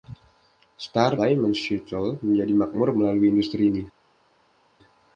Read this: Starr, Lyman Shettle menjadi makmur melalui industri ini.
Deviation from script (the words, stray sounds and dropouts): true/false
false